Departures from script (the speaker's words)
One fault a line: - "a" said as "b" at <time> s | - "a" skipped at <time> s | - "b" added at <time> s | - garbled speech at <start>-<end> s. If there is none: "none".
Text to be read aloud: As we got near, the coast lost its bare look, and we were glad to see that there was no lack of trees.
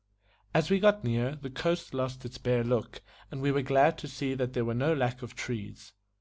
none